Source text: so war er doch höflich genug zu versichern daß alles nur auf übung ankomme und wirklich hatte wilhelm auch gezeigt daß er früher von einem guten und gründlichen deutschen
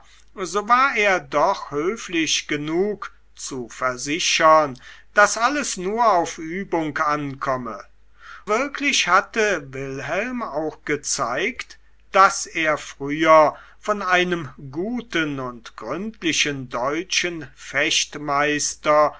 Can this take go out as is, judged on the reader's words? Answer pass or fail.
fail